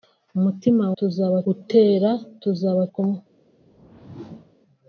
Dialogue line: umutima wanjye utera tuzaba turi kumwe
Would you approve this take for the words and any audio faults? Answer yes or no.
no